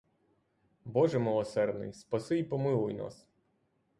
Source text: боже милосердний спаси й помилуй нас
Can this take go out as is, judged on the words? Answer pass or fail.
pass